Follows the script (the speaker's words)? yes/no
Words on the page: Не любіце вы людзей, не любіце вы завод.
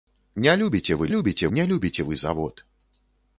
no